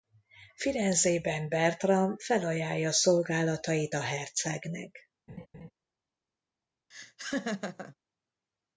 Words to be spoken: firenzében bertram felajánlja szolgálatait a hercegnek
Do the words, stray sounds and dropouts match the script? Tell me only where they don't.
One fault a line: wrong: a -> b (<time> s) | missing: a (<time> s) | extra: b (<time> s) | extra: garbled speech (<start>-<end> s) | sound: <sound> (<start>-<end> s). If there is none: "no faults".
sound: laugh (5.3-5.7 s)
sound: laugh (6.9-8.0 s)